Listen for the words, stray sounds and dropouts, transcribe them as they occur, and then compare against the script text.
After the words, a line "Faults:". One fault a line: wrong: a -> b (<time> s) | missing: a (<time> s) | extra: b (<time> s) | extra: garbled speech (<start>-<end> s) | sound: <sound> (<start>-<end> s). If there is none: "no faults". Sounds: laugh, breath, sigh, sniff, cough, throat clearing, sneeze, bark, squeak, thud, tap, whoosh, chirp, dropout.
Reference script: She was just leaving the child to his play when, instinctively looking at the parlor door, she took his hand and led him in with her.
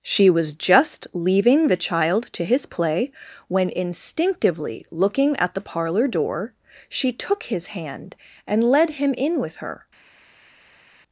She was just leaving the child to his play when, instinctively looking at the parlor door, she took his hand and led him in with her.
Faults:
no faults